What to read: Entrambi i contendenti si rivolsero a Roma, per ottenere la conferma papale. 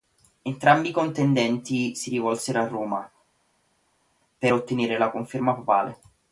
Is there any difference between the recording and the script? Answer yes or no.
no